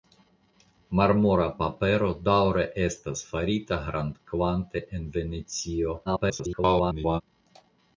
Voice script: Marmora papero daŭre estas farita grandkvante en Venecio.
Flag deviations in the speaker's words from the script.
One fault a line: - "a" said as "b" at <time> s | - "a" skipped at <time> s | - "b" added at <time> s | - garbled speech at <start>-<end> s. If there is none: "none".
- garbled speech at 6.1-7.2 s